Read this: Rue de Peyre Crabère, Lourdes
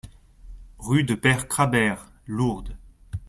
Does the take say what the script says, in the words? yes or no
yes